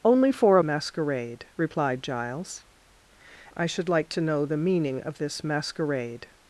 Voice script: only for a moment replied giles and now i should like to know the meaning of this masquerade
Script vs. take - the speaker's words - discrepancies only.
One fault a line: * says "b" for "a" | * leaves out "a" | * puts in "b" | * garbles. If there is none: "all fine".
* says "masquerade" for "moment"
* leaves out "and now"